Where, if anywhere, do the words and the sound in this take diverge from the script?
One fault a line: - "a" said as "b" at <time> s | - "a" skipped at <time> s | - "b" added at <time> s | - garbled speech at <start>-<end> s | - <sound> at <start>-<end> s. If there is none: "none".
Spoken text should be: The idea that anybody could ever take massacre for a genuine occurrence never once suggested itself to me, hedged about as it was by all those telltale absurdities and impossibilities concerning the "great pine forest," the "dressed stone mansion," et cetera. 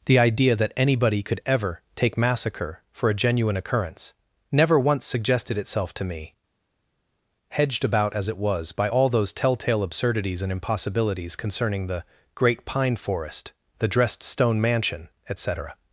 none